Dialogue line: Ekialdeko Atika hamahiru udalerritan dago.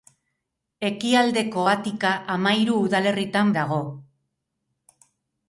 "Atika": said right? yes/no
yes